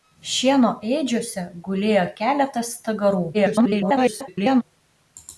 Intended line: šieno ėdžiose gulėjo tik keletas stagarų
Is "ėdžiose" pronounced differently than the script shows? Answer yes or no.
no